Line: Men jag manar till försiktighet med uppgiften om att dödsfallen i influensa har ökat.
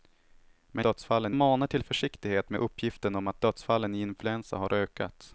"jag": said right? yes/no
no